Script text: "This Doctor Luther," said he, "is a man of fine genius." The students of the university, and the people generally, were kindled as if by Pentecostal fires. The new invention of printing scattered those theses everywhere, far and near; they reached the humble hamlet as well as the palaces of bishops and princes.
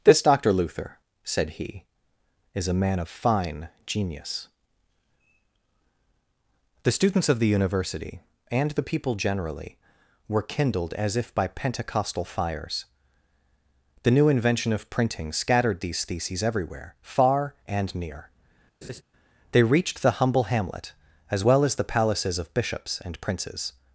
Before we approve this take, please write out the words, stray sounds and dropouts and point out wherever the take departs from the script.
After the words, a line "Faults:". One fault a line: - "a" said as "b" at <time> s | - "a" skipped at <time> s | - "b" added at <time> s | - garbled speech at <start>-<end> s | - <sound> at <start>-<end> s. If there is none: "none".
"This Doctor Luther," said he, "is a man of fine genius." The students of the university, and the people generally, were kindled as if by Pentecostal fires. The new invention of printing scattered these theses everywhere, far and near; they reached the humble hamlet as well as the palaces of bishops and princes.
Faults:
- "those" said as "these" at 15.8 s
- laugh at 18.8-19.0 s